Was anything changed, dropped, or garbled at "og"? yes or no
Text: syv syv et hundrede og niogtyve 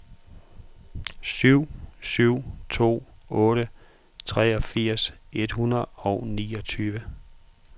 no